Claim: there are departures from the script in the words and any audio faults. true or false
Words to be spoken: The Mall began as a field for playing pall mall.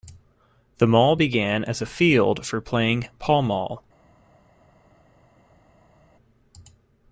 false